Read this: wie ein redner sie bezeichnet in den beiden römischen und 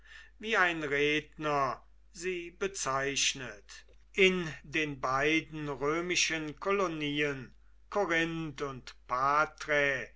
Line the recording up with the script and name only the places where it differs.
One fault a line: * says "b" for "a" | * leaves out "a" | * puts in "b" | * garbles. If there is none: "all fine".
* puts in "kolonien korinth"